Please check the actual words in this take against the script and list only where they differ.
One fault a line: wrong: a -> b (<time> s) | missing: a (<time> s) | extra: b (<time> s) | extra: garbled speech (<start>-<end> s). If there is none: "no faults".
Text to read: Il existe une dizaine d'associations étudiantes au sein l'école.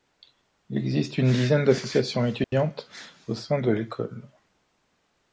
extra: de (3.6 s)